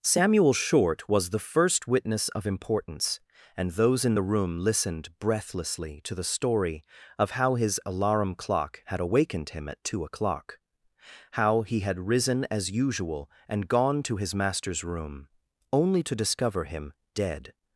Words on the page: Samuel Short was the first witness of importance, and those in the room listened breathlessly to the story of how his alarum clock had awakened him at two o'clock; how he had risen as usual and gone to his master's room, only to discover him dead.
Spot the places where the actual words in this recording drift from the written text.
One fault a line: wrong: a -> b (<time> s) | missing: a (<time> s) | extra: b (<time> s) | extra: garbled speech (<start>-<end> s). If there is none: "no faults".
no faults